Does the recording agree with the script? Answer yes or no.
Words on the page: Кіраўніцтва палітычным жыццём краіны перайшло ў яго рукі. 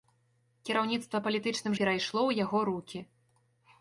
no